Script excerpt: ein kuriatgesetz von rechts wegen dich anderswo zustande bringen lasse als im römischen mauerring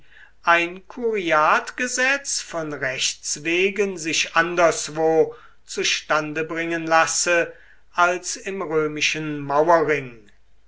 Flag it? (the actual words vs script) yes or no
yes